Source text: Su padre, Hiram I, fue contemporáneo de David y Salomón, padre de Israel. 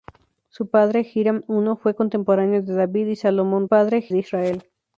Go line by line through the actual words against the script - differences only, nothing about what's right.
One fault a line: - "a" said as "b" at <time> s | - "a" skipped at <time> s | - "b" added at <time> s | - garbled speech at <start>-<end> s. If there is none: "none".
none